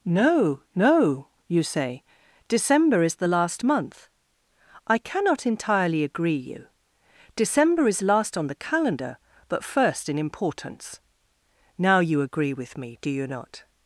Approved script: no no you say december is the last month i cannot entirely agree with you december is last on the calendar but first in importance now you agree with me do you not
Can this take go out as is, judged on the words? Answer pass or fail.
fail